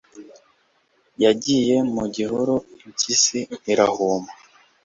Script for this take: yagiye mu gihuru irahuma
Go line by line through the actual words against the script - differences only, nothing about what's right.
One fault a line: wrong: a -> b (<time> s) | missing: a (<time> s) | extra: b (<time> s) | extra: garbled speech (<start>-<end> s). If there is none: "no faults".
extra: impyisi (2.9 s)